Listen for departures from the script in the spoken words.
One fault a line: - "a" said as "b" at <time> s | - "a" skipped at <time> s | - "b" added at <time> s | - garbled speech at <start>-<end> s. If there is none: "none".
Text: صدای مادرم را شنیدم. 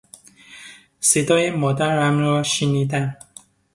none